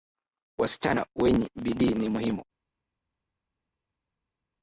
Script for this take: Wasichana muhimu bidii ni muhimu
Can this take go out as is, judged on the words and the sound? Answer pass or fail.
fail